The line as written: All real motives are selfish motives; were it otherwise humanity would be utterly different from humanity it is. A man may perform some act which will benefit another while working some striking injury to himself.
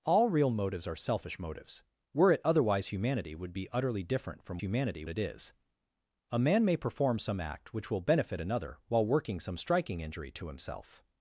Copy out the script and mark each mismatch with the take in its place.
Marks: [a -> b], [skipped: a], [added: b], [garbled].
All real motives are selfish motives; were it otherwise humanity would be utterly different from humanity it is. A man may perform some act which will benefit another while working some striking injury to himself.